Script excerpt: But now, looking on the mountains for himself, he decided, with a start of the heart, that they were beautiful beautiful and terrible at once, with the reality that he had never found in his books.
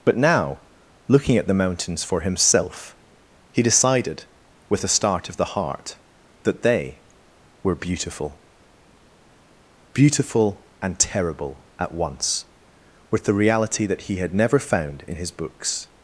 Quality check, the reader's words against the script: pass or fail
fail